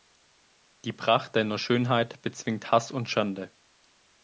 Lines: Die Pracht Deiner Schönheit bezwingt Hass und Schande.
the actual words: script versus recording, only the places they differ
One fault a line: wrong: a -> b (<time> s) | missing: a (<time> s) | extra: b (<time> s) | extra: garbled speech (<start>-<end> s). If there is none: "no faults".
no faults